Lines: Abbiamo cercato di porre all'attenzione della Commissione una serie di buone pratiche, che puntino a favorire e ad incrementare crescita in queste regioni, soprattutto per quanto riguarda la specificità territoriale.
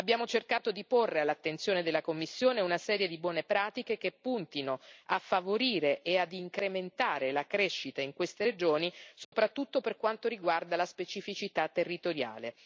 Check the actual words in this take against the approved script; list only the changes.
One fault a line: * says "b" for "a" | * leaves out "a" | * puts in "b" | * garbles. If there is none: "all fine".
* puts in "la"